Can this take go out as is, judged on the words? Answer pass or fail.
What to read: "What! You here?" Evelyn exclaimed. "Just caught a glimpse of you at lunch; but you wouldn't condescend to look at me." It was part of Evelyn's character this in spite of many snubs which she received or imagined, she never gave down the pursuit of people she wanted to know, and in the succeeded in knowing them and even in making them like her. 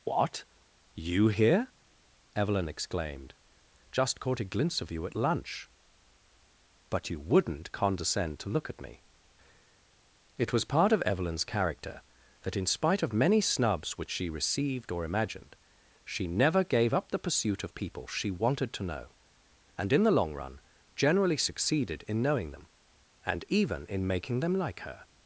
fail